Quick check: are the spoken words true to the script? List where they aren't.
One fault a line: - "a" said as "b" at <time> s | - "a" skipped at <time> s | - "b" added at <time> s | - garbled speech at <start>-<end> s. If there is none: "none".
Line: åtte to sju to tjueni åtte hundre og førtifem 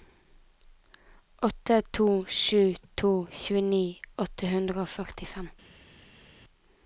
none